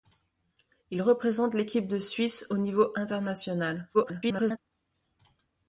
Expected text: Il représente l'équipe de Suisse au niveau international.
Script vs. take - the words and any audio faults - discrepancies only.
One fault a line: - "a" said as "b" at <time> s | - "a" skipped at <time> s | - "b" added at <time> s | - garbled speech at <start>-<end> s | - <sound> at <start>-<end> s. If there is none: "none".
- garbled speech at 3.9-4.6 s